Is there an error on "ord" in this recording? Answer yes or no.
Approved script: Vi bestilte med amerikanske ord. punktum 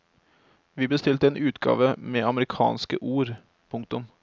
no